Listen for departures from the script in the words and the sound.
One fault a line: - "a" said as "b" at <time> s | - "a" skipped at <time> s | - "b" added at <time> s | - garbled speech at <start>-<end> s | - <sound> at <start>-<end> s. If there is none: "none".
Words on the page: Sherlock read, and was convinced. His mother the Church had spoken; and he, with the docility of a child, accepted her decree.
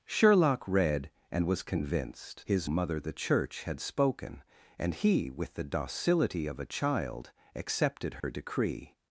- dropout at 8.2-8.2 s